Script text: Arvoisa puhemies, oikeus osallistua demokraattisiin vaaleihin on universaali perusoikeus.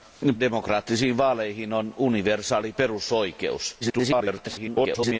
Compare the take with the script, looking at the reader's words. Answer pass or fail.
fail